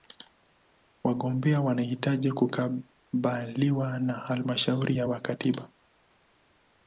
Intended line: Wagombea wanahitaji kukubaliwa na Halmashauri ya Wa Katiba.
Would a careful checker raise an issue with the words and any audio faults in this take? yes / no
no